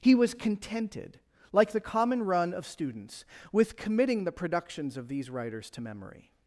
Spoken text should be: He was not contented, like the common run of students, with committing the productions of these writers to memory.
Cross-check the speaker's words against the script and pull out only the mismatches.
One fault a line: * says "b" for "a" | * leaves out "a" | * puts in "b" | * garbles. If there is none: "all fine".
* leaves out "not"